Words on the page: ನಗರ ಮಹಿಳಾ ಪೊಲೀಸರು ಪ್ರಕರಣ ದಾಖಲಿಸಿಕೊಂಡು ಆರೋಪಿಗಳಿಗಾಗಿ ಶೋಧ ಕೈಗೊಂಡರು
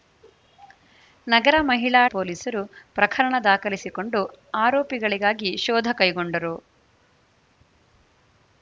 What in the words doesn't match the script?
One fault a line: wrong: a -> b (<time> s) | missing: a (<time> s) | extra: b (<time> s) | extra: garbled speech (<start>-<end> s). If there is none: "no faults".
no faults